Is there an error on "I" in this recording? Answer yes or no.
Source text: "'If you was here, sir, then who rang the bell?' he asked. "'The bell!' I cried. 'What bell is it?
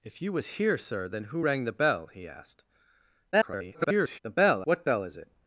yes